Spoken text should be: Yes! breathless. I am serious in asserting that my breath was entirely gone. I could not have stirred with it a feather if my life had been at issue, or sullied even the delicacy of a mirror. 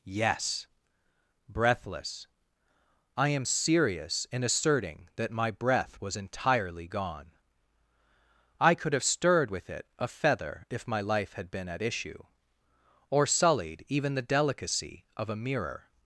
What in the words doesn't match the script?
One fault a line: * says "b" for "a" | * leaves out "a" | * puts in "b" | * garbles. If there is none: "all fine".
* leaves out "not"